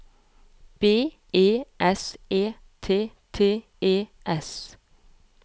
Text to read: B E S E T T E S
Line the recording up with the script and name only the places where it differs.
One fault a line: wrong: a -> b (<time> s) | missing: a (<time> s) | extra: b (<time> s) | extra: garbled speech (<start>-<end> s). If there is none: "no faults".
no faults